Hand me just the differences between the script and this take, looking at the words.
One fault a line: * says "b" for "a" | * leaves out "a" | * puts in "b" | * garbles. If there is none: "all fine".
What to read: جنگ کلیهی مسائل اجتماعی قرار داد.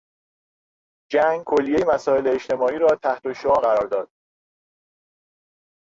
* puts in "را تحتالشعاع"